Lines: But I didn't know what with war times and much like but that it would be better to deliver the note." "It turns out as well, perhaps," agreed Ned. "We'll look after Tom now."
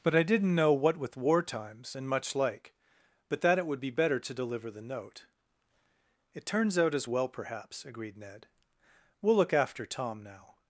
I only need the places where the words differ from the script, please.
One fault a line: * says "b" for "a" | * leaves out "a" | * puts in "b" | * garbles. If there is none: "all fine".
all fine